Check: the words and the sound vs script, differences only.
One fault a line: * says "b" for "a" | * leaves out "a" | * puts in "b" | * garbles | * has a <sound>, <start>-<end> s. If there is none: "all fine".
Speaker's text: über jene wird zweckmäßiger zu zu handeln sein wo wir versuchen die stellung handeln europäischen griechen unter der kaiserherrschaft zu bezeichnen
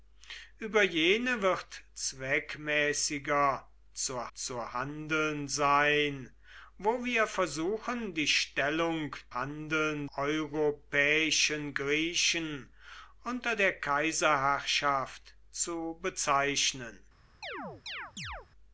* has a chirp, 17.4-18.5 s